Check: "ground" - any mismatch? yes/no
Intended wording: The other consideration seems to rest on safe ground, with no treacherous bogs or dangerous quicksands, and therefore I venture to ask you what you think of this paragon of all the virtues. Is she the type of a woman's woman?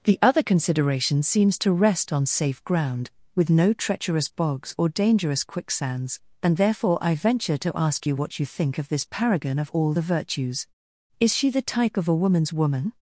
no